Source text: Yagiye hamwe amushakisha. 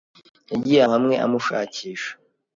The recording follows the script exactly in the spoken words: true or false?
true